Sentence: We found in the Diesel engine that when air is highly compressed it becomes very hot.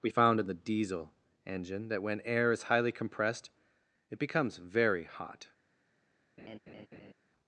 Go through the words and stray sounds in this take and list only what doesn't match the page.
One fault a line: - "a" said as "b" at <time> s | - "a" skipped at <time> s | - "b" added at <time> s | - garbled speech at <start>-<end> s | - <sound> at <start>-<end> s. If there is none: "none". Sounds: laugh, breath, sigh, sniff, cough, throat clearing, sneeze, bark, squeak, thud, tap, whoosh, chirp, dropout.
- laugh at 6.4-7.1 s